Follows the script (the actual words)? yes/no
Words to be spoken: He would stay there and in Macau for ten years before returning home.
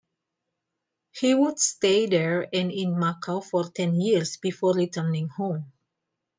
yes